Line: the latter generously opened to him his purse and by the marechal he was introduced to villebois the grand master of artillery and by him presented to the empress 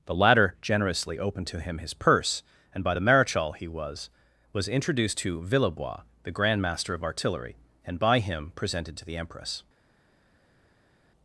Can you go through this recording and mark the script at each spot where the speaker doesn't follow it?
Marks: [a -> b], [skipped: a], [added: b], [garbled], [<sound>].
the latter generously opened to him his purse and by the marechal he was [added: was] introduced to villebois the grand master of artillery and by him presented to the empress